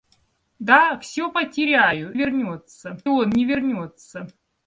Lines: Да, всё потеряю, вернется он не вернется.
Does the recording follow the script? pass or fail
pass